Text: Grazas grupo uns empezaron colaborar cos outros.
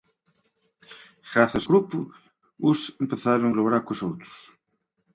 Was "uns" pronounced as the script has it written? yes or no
yes